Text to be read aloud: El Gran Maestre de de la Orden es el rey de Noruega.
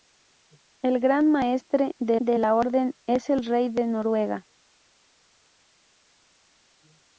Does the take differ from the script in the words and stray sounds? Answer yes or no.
no